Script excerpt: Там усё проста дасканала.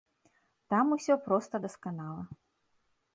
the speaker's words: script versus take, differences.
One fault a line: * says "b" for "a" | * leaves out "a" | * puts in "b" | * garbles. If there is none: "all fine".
all fine